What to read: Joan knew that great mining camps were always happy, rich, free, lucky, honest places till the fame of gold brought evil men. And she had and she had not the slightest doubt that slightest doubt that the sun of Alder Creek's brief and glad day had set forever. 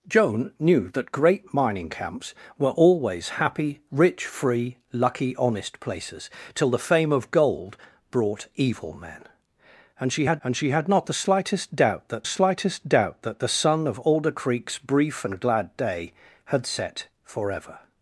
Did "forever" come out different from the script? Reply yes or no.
no